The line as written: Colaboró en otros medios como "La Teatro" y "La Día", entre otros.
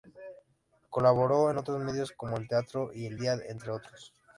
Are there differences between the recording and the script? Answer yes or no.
yes